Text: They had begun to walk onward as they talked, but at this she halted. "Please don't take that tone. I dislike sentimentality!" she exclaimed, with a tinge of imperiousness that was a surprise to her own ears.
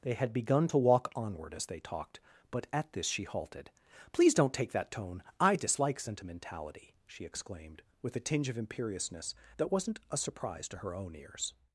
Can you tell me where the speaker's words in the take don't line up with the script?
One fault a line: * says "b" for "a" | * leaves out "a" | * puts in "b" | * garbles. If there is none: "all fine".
* says "wasn't" for "was"